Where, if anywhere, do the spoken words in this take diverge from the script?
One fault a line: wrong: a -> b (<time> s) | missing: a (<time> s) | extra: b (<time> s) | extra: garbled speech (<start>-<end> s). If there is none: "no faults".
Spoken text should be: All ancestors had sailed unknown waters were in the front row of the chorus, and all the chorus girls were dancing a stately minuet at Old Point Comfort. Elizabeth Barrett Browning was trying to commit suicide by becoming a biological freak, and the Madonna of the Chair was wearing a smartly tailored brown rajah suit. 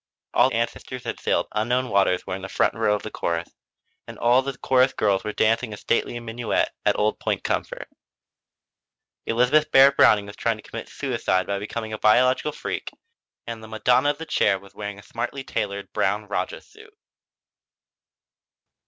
no faults